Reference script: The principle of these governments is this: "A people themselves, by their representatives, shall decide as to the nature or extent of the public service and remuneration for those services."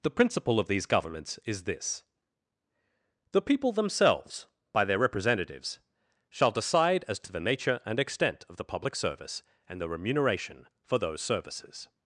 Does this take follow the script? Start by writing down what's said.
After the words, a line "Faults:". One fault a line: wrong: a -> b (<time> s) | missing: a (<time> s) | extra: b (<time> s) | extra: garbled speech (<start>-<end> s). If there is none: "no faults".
The principle of these governments is this: "The people themselves, by their representatives, shall decide as to the nature and extent of the public service and the remuneration for those services."
Faults:
wrong: A -> The (3.3 s)
wrong: or -> and (7.8 s)
extra: the (9.8 s)